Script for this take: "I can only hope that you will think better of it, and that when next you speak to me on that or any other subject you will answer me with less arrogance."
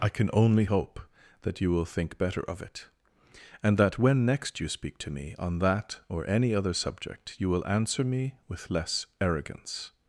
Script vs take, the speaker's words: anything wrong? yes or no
no